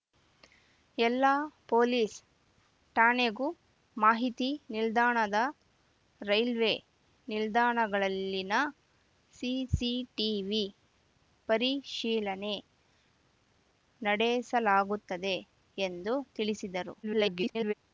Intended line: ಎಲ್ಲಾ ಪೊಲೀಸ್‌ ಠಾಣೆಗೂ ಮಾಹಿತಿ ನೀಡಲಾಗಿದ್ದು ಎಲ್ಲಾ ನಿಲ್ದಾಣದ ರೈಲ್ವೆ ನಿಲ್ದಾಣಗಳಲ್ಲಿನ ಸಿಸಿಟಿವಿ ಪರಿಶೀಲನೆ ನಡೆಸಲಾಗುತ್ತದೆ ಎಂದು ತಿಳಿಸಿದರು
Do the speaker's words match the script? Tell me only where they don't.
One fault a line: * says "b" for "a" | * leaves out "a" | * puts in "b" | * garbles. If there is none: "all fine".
* leaves out "ನೀಡಲಾಗಿದ್ದು ಎಲ್ಲಾ"
* garbles